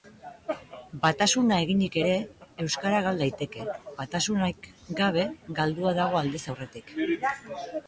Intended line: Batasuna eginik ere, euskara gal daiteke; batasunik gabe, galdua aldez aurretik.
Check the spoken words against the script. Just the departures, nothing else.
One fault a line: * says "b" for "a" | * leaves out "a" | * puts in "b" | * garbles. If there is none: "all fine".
* puts in "dago"